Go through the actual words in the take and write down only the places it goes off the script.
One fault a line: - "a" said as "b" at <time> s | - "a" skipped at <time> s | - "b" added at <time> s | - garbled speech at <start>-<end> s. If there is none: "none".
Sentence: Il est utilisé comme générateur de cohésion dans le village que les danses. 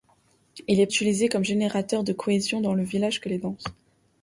none